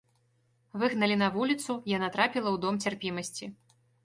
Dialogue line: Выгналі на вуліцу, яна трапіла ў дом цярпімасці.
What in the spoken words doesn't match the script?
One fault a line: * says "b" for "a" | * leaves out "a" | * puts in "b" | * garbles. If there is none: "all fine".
all fine